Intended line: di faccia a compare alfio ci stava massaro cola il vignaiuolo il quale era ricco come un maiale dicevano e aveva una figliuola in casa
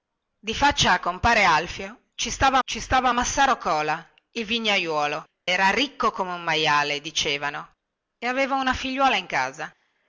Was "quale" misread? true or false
true